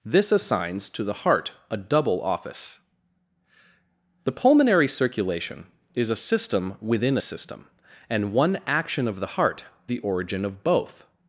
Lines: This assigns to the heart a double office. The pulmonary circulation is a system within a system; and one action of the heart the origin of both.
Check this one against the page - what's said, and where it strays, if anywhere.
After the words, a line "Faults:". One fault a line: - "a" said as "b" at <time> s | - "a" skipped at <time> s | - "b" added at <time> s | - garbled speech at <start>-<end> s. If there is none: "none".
This assigns to the heart a double office. The pulmonary circulation is a system within a system; and one action of the heart the origin of both.
Faults:
none